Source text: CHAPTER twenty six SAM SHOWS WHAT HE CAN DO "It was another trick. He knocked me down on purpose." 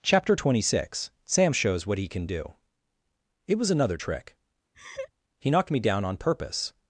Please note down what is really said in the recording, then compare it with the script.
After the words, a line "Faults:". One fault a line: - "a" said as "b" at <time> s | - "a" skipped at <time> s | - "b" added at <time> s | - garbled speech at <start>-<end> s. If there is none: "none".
CHAPTER twenty six SAM SHOWS WHAT HE CAN DO "It was another trick. He knocked me down on purpose."
Faults:
none